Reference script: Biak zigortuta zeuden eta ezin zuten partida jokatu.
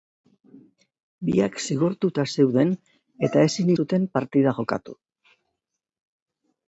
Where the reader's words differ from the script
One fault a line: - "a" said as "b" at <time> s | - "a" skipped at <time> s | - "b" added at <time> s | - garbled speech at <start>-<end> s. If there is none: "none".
none